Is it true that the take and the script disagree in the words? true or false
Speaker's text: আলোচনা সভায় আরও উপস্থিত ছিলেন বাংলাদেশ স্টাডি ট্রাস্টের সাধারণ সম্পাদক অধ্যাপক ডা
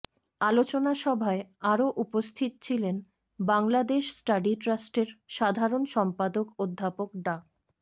false